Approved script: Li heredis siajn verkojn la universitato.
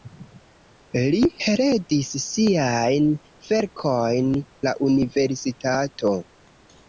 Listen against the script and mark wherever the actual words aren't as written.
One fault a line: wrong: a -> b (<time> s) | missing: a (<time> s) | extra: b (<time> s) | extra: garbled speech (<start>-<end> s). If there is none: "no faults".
no faults